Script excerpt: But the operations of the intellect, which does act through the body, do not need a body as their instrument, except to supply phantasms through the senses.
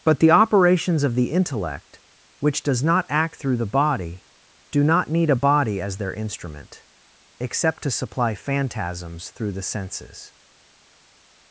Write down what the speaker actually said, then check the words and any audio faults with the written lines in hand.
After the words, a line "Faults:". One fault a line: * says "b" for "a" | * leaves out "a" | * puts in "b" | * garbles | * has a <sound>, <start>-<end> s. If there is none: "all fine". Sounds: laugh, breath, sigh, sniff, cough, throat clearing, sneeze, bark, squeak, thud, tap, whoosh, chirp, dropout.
But the operations of the intellect, which does not act through the body, do not need a body as their instrument, except to supply phantasms through the senses.
Faults:
* puts in "not"